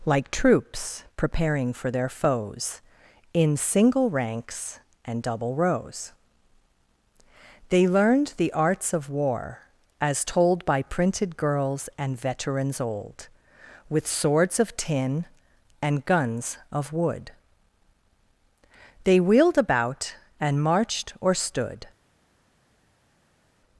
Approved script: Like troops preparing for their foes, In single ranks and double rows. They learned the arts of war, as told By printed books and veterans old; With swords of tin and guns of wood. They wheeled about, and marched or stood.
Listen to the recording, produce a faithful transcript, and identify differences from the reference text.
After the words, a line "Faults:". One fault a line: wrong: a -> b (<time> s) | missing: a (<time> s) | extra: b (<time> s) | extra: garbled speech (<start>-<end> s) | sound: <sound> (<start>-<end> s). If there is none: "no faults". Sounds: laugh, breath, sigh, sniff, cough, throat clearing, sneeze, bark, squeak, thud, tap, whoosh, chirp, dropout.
Like troops preparing for their foes, In single ranks and double rows. They learned the arts of war, as told By printed girls and veterans old; With swords of tin and guns of wood. They wheeled about, and marched or stood.
Faults:
wrong: books -> girls (11.4 s)